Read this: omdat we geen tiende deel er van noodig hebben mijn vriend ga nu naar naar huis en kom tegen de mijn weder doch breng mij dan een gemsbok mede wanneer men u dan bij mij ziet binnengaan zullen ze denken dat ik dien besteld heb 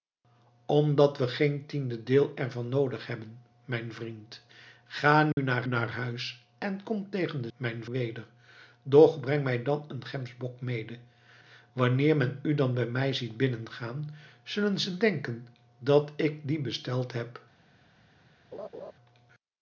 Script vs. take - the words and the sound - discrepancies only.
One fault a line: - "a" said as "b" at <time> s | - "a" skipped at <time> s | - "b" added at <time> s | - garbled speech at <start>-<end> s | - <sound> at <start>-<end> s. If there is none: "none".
- dropout at 5.3-5.4 s
- laugh at 18.5-18.9 s